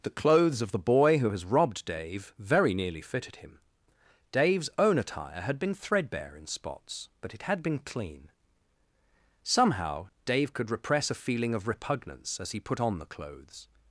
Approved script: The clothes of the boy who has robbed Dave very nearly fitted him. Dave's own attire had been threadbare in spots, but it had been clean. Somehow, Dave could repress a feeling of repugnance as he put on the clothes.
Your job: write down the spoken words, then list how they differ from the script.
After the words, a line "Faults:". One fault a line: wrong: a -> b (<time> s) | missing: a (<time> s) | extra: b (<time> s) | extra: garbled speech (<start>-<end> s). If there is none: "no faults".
The clothes of the boy who has robbed Dave very nearly fitted him. Dave's own attire had been threadbare in spots, but it had been clean. Somehow, Dave could repress a feeling of repugnance as he put on the clothes.
Faults:
no faults